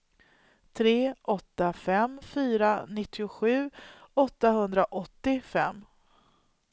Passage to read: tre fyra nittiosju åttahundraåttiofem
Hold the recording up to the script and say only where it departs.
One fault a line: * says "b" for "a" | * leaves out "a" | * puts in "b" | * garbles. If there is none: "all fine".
* puts in "åtta fem"